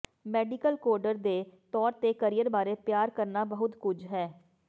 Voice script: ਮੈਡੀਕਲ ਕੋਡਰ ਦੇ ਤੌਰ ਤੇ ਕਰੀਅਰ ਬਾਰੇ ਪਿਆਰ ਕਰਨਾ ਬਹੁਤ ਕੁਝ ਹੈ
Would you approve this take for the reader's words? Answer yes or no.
yes